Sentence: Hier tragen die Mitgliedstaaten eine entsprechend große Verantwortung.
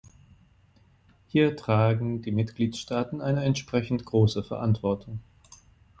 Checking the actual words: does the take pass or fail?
pass